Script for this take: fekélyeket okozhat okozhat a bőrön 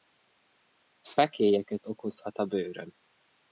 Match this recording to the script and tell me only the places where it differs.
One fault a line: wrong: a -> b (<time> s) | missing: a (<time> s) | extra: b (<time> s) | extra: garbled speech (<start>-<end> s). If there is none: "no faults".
missing: okozhat (2.4 s)